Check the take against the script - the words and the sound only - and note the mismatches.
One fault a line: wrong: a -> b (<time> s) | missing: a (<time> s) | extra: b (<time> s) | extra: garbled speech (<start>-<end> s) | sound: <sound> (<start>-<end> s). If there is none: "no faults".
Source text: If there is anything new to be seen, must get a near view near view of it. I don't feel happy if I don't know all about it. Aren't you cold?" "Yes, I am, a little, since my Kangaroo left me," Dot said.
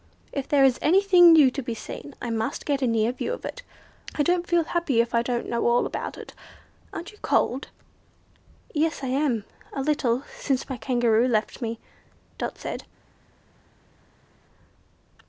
extra: I (2.2 s)
missing: near view (3.3 s)